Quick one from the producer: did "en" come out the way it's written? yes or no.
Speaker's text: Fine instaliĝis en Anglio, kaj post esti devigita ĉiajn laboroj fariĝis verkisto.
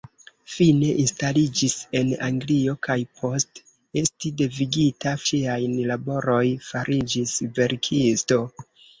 yes